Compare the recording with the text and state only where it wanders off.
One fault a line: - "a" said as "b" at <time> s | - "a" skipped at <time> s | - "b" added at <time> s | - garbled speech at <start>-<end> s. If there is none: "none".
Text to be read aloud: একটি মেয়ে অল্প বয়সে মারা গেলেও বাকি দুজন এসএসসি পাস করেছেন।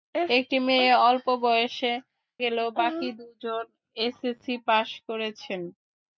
- "মারা" skipped at 1.9 s